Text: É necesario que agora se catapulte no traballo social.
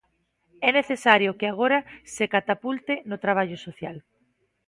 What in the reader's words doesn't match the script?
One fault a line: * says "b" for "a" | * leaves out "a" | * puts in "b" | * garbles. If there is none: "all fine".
all fine